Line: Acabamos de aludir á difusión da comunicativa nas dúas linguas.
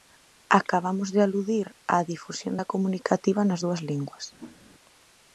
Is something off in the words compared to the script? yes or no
no